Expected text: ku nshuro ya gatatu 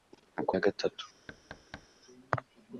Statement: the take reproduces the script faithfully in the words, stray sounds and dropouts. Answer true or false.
false